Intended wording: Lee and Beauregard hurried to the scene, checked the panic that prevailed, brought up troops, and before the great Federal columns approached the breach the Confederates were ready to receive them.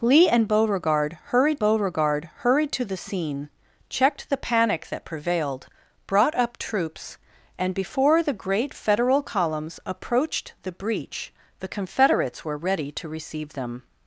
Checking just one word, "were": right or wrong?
right